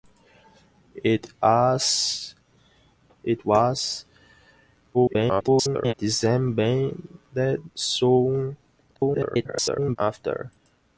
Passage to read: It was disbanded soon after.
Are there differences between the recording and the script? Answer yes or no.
yes